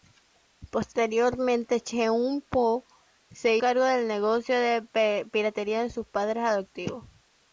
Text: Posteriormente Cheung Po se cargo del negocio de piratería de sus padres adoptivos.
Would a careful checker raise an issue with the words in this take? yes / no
no